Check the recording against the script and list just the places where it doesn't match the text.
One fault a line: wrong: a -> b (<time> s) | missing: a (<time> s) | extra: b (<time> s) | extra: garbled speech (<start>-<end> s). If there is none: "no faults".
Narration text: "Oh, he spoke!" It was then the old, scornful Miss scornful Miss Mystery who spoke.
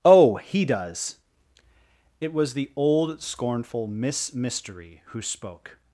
wrong: spoke -> does (0.7 s)
missing: then (2.5 s)
missing: scornful Miss (4.3 s)